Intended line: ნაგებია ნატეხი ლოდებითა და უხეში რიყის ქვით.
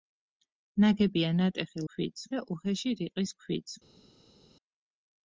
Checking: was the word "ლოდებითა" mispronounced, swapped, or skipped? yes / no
yes